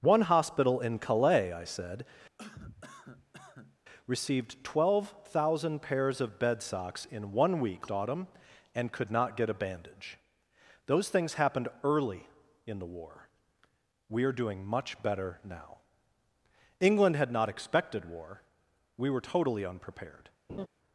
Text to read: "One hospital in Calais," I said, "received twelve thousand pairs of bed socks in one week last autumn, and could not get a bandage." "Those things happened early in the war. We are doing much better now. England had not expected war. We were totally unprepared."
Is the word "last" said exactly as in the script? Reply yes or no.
no